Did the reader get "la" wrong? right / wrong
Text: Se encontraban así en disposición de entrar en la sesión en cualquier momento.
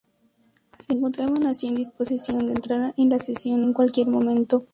right